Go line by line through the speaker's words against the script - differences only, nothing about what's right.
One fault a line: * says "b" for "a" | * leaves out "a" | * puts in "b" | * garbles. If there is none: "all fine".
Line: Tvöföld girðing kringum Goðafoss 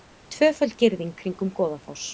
all fine